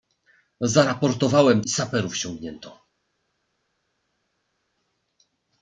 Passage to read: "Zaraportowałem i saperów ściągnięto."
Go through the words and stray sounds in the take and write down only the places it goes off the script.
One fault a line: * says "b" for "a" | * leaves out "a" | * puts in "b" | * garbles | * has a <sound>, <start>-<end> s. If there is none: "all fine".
all fine